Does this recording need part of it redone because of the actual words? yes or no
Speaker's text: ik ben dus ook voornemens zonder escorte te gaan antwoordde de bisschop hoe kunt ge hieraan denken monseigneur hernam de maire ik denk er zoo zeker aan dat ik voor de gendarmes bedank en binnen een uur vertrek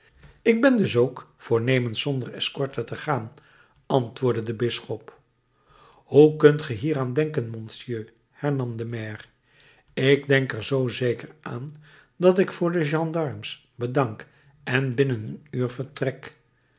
no